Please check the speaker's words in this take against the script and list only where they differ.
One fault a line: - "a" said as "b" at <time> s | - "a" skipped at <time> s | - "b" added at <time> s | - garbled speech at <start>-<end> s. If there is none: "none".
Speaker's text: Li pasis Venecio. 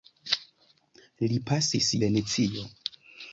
none